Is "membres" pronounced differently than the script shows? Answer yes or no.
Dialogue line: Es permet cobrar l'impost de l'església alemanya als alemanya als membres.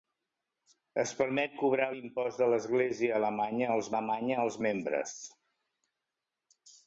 no